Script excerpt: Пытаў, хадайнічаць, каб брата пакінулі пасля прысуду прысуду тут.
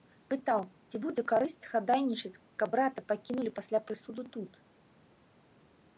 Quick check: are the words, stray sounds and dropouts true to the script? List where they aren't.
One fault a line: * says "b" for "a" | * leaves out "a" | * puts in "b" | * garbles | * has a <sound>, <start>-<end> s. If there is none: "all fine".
* puts in "ці будзе карысць"
* leaves out "прысуду"